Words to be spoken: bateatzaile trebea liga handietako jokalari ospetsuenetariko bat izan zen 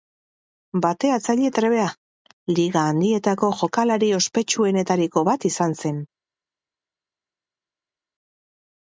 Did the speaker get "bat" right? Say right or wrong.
right